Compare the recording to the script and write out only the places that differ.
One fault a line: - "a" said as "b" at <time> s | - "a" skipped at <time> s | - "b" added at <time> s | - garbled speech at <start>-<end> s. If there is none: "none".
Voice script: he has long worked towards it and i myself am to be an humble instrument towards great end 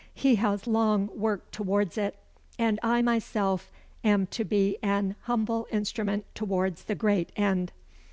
- "the" added at 6.8 s